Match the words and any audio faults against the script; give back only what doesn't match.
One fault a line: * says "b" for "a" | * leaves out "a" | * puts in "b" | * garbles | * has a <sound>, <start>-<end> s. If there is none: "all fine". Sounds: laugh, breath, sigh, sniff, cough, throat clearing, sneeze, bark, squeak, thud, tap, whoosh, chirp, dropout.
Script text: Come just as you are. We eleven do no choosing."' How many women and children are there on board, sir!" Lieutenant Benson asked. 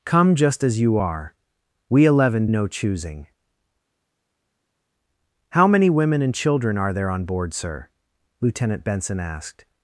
* leaves out "do"